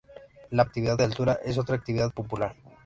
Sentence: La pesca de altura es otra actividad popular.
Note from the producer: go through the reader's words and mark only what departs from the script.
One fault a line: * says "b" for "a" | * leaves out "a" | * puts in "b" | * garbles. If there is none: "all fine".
* says "actividad" for "pesca"